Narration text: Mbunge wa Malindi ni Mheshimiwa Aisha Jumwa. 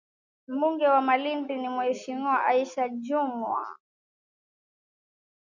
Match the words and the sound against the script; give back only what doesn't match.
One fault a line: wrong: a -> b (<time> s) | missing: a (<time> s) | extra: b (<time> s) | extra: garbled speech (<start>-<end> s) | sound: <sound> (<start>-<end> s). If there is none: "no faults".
no faults